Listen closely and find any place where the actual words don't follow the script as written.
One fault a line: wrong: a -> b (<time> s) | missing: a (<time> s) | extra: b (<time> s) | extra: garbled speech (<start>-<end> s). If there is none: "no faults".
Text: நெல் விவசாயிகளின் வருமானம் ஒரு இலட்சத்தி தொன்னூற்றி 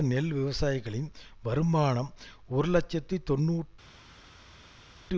no faults